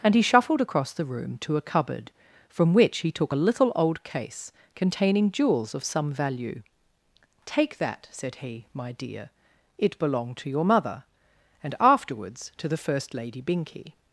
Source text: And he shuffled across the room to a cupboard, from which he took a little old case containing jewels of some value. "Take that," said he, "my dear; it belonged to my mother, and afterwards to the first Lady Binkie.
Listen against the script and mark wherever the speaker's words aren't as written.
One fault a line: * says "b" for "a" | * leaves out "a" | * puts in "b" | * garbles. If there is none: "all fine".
* says "your" for "my"